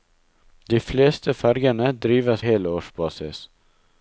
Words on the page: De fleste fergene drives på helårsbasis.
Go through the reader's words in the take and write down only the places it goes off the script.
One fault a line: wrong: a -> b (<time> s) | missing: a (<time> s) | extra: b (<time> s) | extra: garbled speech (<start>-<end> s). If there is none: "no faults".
missing: på (2.4 s)